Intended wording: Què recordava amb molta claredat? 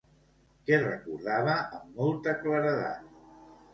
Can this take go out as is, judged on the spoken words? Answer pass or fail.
pass